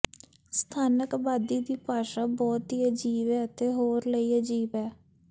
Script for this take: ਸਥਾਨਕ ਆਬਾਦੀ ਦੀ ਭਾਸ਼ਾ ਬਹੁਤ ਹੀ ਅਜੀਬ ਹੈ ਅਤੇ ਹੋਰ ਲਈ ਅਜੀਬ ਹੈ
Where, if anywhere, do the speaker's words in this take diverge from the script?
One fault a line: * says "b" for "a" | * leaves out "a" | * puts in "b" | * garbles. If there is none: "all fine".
all fine